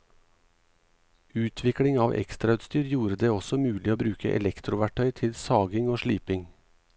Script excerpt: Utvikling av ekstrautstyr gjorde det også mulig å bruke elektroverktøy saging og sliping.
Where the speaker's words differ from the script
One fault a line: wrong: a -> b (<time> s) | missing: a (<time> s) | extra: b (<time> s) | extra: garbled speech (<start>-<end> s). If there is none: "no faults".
extra: til (5.2 s)